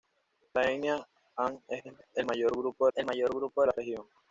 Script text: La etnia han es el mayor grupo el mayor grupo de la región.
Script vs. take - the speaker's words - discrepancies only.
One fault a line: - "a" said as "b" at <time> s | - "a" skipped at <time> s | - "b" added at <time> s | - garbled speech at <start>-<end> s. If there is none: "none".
none